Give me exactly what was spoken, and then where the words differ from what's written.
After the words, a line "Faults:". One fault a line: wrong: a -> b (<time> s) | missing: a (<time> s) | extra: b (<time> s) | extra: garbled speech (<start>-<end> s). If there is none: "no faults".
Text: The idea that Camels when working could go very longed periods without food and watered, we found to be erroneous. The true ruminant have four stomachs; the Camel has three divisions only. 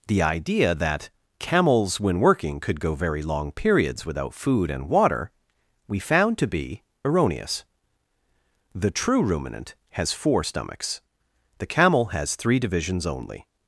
The idea that Camels when working could go very long periods without food and water, we found to be erroneous. The true ruminant has four stomachs; the Camel has three divisions only.
Faults:
wrong: longed -> long (3.2 s)
wrong: watered -> water (4.9 s)
wrong: have -> has (9.9 s)